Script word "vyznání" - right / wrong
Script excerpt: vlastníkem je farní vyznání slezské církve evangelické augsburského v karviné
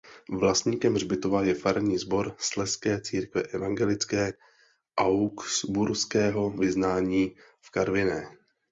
wrong